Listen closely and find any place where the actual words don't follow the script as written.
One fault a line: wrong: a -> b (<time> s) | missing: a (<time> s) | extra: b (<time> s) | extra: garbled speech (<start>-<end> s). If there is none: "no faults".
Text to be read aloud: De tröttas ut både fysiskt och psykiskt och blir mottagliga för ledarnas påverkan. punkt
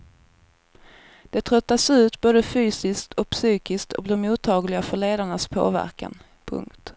no faults